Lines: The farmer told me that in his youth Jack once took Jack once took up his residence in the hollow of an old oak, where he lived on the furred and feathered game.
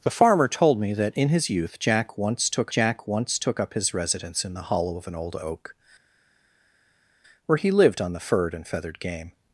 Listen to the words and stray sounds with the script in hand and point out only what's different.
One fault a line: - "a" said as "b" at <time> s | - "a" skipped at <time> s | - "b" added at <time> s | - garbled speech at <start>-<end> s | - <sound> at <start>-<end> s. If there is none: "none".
none